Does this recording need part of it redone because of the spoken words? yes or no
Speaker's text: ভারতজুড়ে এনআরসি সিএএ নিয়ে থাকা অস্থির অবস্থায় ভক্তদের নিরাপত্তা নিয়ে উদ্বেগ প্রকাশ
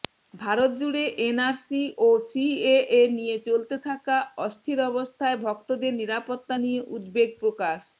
yes